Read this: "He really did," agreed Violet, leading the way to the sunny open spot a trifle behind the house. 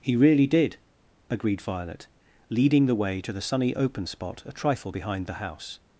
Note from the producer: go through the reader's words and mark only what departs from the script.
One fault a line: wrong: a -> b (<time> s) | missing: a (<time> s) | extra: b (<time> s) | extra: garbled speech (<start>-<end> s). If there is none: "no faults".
no faults